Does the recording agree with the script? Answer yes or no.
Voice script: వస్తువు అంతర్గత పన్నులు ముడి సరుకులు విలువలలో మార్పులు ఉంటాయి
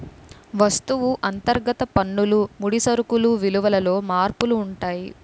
yes